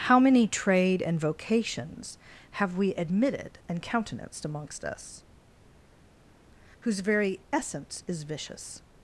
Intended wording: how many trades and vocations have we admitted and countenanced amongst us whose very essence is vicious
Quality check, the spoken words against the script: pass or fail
fail